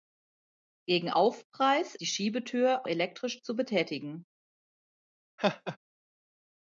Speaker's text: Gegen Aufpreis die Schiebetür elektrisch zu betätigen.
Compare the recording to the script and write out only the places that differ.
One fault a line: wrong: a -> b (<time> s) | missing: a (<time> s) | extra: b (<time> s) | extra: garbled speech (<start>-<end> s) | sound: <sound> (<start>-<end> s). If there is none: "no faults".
sound: laugh (5.4-5.8 s)